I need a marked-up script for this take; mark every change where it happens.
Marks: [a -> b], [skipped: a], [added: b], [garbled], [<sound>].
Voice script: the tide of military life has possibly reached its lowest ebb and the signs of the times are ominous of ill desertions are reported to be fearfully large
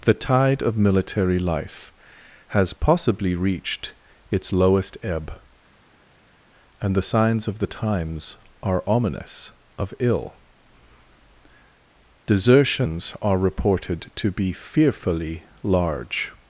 the tide of military life has possibly reached its lowest ebb and the signs of the times are ominous of ill desertions are reported to be fearfully large